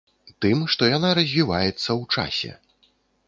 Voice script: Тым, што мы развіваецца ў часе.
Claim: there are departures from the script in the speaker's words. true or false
true